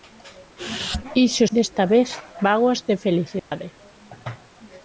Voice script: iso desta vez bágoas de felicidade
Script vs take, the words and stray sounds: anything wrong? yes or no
yes